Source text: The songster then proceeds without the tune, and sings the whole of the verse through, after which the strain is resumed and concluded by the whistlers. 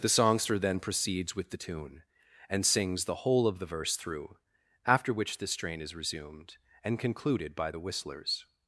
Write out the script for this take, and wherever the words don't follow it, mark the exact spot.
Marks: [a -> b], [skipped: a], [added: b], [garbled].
The songster then proceeds [without -> with] the tune, and sings the whole of the verse through, after which the strain is resumed and concluded by the whistlers.